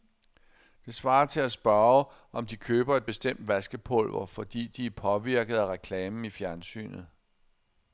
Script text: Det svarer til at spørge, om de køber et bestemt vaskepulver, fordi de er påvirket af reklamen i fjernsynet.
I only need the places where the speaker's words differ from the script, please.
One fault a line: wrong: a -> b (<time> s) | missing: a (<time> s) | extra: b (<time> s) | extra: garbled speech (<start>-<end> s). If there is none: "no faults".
no faults